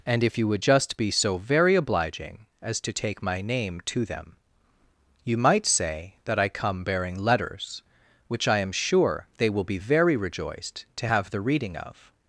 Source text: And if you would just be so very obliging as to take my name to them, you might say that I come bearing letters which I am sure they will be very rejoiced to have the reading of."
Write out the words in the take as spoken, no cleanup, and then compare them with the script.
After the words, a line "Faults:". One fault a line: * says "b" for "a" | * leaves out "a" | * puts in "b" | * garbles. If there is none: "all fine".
And if you would just be so very obliging as to take my name to them, you might say that I come bearing letters which I am sure they will be very rejoiced to have the reading of."
Faults:
all fine